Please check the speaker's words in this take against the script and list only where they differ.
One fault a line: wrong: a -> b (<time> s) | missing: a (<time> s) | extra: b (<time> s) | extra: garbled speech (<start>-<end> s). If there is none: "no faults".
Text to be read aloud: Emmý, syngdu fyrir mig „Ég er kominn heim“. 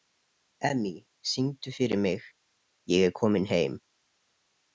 no faults